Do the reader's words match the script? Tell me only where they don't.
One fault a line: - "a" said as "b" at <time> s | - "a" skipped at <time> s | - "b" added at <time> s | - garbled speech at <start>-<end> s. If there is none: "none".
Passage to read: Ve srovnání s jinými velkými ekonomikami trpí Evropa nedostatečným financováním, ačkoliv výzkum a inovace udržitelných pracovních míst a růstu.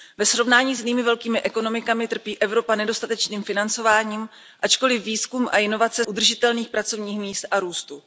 none